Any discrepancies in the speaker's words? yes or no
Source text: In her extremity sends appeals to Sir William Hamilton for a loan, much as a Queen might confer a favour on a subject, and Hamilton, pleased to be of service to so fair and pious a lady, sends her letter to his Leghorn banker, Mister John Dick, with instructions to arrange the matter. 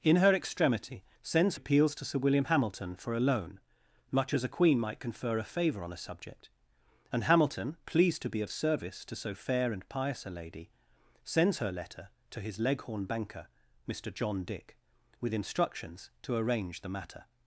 no